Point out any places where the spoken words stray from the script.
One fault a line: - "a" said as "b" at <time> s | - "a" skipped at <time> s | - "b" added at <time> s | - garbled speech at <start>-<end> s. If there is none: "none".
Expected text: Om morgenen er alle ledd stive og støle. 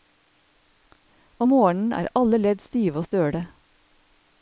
none